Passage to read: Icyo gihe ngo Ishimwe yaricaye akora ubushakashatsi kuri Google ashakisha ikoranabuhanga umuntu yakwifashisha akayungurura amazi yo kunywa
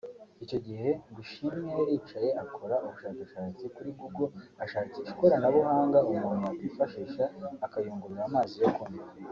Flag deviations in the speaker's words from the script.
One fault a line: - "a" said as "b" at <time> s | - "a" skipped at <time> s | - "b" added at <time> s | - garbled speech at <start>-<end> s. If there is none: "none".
none